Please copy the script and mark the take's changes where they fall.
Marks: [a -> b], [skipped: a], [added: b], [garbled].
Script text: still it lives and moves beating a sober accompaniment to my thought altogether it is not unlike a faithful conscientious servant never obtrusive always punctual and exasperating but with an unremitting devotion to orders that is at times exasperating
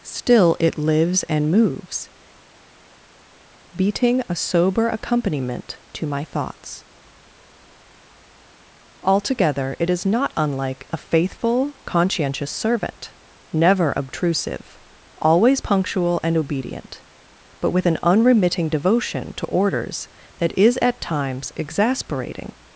still it lives and moves beating a sober accompaniment to my [thought -> thoughts] altogether it is not unlike a faithful conscientious servant never obtrusive always punctual and [exasperating -> obedient] but with an unremitting devotion to orders that is at times exasperating